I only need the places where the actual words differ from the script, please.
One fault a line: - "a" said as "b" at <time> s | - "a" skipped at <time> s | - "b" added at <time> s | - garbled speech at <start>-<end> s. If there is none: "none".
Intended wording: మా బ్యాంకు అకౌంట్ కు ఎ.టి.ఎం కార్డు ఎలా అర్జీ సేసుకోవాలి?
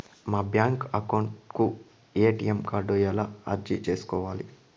none